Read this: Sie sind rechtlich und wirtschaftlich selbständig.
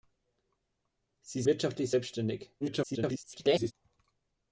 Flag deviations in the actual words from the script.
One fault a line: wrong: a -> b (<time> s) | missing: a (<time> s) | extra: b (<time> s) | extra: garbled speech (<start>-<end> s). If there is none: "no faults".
missing: sind rechtlich und (1.4 s)
extra: garbled speech (2.6-3.7 s)